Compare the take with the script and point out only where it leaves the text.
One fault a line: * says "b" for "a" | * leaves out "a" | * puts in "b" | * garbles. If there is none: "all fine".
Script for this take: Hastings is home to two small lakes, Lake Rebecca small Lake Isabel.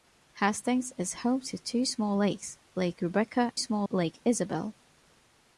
all fine